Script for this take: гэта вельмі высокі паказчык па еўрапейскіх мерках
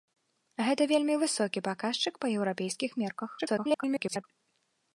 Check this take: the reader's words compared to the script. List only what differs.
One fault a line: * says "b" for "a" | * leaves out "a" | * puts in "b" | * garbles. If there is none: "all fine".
* garbles